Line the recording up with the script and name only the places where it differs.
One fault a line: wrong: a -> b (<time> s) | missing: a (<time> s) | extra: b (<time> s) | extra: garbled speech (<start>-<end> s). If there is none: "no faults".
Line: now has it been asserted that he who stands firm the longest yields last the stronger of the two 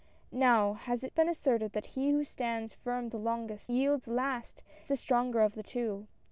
no faults